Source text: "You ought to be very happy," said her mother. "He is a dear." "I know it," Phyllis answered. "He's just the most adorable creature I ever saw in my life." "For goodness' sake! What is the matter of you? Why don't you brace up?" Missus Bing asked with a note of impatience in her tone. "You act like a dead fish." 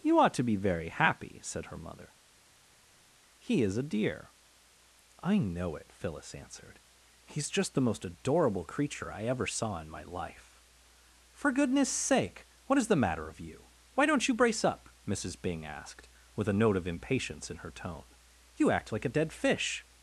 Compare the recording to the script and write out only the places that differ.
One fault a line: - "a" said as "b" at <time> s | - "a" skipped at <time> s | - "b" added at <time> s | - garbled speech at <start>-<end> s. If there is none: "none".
none